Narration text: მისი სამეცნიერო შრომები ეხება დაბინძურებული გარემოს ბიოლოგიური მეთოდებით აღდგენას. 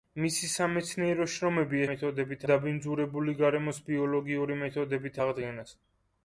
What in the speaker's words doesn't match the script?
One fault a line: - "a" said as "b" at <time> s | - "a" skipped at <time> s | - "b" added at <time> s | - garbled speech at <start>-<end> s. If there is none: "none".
- "ეხება" said as "მეთოდებით" at 1.9 s